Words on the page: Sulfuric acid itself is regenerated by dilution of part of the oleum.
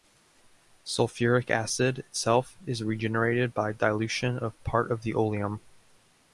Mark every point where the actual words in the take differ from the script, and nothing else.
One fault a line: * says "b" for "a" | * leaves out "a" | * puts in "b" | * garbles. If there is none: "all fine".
all fine